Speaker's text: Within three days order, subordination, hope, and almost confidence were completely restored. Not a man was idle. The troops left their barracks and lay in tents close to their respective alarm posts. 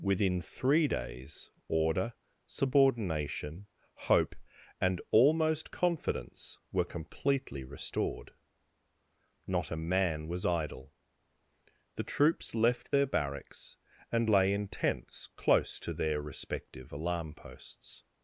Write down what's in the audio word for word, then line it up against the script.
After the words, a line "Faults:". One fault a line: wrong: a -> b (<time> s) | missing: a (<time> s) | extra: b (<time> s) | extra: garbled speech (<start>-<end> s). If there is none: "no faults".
Within three days order, subordination, hope, and almost confidence were completely restored. Not a man was idle. The troops left their barracks and lay in tents close to their respective alarm posts.
Faults:
no faults